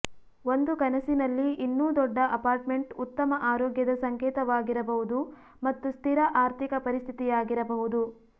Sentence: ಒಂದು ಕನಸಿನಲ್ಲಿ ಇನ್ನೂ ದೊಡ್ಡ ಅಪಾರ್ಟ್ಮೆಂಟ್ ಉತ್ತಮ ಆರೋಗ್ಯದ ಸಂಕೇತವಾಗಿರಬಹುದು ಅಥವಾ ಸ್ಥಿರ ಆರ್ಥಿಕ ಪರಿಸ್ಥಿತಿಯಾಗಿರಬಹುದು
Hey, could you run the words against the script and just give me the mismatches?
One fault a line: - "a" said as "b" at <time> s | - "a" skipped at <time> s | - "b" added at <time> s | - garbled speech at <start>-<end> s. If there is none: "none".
- "ಅಥವಾ" said as "ಮತ್ತು" at 5.6 s